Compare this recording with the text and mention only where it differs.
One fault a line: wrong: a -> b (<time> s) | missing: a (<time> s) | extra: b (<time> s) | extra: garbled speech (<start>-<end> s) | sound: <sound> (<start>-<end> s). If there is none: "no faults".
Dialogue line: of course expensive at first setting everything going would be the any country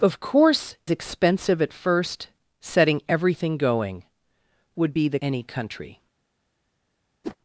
sound: whoosh (7.2-7.4 s)